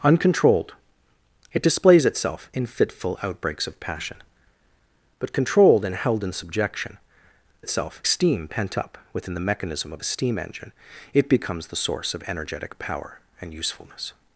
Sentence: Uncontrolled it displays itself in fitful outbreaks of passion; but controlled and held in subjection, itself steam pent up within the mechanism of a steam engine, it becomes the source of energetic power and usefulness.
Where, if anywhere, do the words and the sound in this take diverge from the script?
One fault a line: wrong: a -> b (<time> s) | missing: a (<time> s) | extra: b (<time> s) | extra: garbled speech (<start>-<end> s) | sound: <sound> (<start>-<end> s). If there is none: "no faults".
no faults